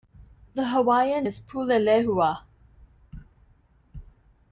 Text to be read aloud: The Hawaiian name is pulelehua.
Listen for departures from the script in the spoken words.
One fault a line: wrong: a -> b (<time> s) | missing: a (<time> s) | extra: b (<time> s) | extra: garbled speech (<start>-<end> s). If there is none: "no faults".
missing: name (1.3 s)